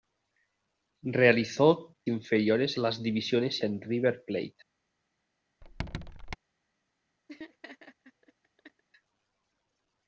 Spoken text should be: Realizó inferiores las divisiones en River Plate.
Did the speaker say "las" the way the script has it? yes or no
yes